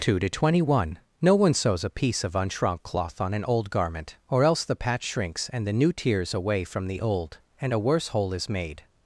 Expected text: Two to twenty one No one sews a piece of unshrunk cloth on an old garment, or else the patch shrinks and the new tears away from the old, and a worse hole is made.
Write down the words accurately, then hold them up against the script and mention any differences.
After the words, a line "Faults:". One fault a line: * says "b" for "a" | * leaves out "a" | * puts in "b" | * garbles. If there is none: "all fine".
Two to twenty one No one sews a piece of unshrunk cloth on an old garment, or else the patch shrinks and the new tears away from the old, and a worse hole is made.
Faults:
all fine